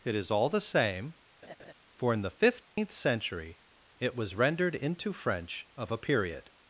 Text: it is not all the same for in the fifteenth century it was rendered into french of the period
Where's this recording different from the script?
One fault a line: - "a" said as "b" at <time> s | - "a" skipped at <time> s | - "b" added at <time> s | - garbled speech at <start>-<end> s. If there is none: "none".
- "not" skipped at 0.3 s
- "the" said as "a" at 5.9 s